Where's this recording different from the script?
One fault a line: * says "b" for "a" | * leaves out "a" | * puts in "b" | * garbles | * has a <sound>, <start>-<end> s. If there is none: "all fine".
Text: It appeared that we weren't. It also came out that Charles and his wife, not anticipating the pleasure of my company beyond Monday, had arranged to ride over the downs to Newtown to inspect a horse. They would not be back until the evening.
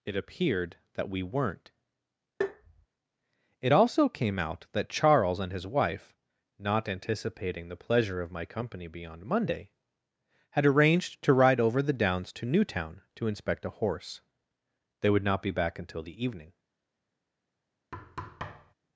* has a tap, 2.4-2.9 s
* has a thud, 17.9-18.7 s